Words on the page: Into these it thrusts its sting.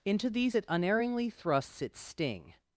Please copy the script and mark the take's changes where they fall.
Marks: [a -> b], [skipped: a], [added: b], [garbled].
Into these it [added: unerringly] thrusts its sting.